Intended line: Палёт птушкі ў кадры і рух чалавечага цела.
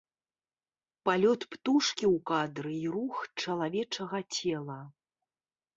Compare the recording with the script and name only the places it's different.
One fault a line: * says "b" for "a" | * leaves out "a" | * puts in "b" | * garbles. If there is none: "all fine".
all fine